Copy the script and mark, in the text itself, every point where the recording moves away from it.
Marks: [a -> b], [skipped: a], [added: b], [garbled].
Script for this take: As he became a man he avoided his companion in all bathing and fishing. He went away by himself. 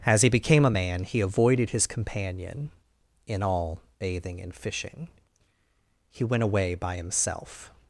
As he became a man he avoided his companion in all bathing and fishing. He went away by himself.